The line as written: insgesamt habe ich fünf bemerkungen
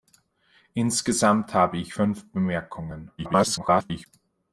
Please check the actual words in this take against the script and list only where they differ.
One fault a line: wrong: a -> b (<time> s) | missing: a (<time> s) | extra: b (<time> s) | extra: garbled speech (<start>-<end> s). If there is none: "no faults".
extra: garbled speech (3.2-4.1 s)